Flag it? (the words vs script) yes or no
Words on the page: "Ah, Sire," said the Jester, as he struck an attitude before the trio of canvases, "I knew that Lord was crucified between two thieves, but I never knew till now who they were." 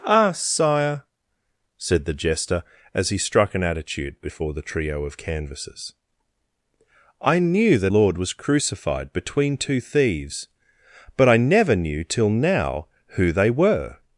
no